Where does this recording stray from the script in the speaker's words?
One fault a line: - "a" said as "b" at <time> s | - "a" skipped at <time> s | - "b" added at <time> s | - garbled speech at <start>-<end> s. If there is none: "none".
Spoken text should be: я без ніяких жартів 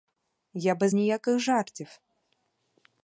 none